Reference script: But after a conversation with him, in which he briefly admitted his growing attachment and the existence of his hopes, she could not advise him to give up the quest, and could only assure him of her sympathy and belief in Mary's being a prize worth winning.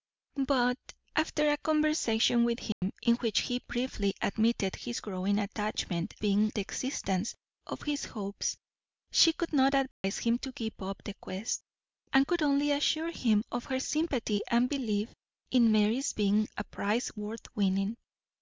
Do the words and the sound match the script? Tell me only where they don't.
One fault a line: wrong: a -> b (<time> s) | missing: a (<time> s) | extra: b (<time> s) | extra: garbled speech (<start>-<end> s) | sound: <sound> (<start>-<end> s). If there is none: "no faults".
sound: dropout (2.7-2.8 s)
wrong: and -> being (6.2 s)
sound: dropout (9.9-10.0 s)